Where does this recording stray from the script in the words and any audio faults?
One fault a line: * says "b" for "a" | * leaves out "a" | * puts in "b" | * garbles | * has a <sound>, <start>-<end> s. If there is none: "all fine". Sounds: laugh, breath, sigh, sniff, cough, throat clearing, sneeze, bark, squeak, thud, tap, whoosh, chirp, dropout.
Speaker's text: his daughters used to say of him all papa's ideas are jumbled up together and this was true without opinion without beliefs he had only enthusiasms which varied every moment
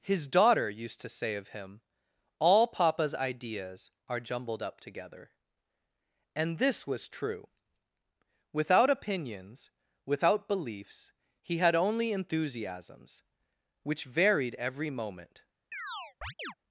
* says "daughter" for "daughters"
* says "opinions" for "opinion"
* has a chirp, 15.7-16.5 s